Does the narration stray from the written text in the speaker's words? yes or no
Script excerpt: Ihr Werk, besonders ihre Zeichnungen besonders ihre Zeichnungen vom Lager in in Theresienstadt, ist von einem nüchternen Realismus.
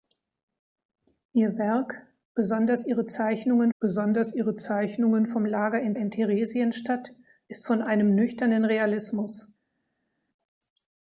no